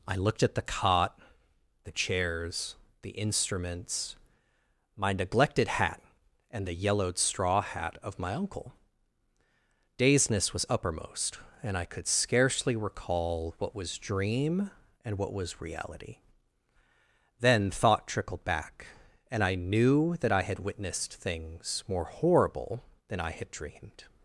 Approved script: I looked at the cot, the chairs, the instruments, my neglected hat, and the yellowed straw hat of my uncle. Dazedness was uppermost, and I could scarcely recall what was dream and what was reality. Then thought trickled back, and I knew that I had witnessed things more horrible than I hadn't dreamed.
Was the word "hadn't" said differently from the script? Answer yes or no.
yes